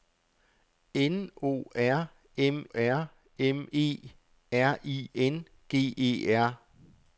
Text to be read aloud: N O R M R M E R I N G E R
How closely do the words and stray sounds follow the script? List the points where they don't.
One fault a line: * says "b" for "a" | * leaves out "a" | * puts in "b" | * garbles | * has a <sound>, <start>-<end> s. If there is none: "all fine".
all fine